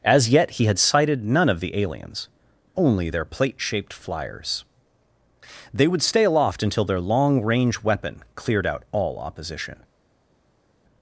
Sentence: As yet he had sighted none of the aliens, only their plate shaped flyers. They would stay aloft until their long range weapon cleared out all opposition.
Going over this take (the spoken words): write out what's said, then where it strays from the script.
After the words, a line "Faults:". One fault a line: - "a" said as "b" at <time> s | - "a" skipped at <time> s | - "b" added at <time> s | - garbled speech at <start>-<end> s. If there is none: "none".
As yet he had sighted none of the aliens, only their plate shaped flyers. They would stay aloft until their long range weapon cleared out all opposition.
Faults:
none